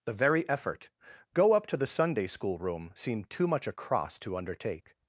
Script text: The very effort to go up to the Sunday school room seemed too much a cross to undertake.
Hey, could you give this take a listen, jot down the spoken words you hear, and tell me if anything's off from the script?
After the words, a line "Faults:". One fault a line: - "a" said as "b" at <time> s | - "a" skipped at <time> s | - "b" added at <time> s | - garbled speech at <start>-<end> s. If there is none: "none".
The very effort go up to the Sunday school room seemed too much a cross to undertake.
Faults:
- "to" skipped at 0.9 s